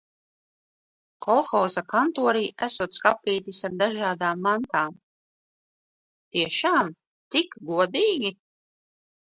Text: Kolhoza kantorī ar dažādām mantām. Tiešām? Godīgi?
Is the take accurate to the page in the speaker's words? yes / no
no